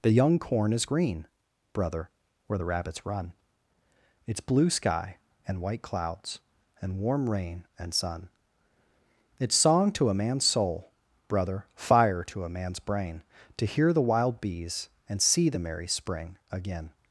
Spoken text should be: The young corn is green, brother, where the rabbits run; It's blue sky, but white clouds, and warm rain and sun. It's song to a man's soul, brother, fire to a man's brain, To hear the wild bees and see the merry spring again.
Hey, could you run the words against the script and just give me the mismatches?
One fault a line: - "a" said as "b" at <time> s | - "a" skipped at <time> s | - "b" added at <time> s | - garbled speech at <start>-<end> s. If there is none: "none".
- "but" said as "and" at 5.5 s